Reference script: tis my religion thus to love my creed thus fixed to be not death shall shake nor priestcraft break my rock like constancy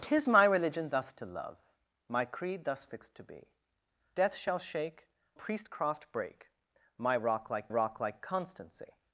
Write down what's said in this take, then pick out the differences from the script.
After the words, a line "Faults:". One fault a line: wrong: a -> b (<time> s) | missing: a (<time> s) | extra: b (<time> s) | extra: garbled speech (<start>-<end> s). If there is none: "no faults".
tis my religion thus to love my creed thus fixed to be death shall shake priestcraft break my rock like rock like constancy
Faults:
missing: not (3.5 s)
missing: nor (5.1 s)
extra: rock like (7.7 s)